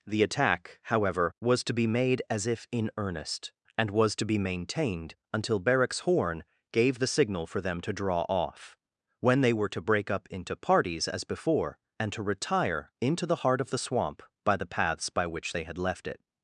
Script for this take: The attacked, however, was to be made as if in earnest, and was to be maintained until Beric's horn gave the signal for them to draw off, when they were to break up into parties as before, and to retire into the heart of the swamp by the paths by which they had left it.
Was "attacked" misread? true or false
true